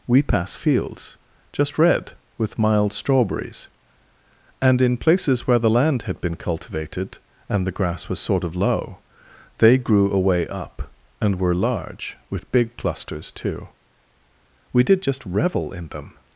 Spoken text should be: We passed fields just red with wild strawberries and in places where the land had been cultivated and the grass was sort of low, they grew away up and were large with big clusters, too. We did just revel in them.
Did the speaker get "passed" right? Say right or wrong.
wrong